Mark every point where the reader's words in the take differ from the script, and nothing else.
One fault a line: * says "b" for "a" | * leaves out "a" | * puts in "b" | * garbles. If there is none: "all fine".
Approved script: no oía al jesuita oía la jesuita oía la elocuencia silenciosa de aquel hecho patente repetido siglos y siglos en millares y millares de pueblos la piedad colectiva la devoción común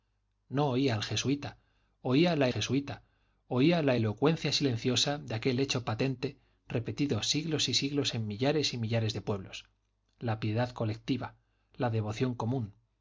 all fine